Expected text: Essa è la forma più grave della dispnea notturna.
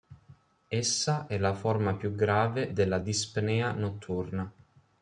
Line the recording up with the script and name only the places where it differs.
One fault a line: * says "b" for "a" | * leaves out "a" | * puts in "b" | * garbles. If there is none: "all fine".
all fine